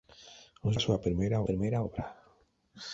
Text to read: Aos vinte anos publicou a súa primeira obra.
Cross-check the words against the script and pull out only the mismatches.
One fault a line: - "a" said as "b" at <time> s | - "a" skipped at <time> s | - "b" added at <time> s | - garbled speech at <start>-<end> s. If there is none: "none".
- "vinte anos publicou" skipped at 0.8 s
- "primeira" added at 1.5 s